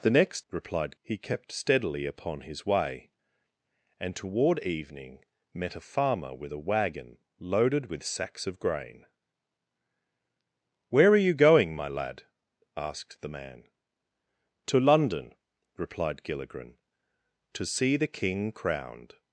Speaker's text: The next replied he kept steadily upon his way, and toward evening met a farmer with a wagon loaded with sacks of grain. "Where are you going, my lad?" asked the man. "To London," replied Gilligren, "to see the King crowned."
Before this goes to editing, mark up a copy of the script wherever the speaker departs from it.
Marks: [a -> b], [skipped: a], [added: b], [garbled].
The next replied he kept steadily upon his way, and toward evening met a farmer with a wagon loaded with sacks of grain. "Where are you going, my lad?" asked the man. "To London," replied Gilligren, "to see the King crowned."